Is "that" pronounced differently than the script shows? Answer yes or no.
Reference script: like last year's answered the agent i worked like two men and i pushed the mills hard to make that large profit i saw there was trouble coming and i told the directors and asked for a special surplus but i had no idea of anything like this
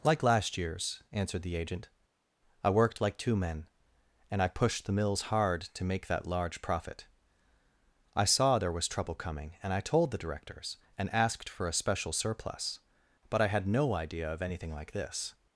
no